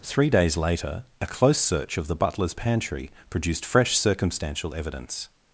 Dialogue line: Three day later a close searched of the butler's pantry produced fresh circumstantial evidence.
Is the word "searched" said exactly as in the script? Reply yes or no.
no